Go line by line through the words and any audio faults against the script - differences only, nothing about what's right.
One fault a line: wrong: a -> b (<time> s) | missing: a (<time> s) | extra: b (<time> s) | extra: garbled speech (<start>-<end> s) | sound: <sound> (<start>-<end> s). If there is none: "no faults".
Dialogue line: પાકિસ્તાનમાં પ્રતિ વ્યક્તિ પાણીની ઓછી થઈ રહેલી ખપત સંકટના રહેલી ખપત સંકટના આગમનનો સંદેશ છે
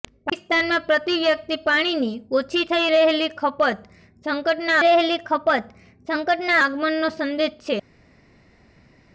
no faults